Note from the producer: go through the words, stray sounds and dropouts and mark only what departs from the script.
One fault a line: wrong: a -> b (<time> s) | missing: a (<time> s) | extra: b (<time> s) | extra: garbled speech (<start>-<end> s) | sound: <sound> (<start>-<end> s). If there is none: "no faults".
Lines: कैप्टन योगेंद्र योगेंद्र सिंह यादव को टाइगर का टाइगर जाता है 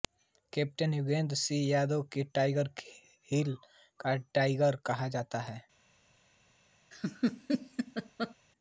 missing: योगेंद्र (1.4 s)
extra: हिल (3.3 s)
extra: कहा (4.9 s)
sound: laugh (6.9-8.3 s)